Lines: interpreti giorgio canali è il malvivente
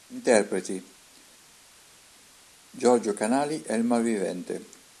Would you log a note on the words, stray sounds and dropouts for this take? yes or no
no